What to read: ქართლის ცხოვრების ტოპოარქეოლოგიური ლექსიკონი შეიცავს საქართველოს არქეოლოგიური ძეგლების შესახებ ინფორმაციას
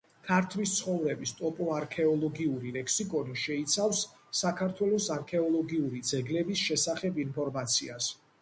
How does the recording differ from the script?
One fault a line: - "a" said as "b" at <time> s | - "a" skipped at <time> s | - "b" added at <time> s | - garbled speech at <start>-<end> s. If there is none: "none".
none